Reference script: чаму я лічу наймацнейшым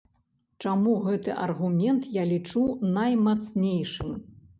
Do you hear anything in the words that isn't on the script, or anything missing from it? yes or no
yes